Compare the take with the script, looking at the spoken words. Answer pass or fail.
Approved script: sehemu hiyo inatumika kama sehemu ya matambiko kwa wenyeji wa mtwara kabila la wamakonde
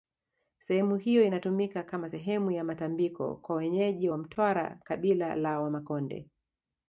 pass